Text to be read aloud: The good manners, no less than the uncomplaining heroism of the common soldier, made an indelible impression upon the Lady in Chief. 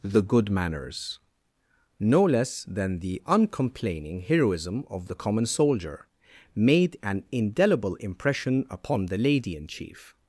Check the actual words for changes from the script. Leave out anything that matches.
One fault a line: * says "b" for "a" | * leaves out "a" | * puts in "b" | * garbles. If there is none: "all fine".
all fine